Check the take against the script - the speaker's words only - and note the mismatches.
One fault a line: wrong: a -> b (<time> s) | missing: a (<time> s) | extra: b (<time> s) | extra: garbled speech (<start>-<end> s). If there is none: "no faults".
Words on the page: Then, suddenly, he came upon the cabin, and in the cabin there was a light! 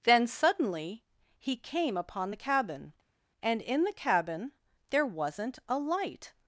wrong: was -> wasn't (5.1 s)